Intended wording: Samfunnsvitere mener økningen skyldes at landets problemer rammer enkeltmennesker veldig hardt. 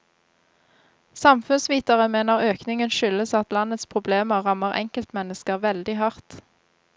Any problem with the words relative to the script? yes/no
no